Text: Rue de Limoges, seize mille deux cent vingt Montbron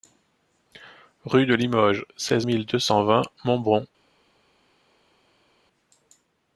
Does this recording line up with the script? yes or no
yes